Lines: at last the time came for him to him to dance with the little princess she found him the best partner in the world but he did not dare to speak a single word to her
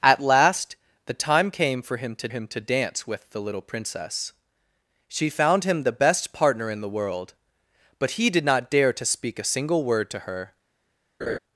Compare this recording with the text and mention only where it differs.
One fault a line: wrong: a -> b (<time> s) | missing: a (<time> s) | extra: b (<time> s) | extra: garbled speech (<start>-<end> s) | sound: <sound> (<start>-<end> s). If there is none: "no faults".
sound: laugh (11.2-11.4 s)